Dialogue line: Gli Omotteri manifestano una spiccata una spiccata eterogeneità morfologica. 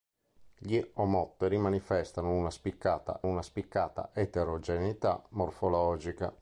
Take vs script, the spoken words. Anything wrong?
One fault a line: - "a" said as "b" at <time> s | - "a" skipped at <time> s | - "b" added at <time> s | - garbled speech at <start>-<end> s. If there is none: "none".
none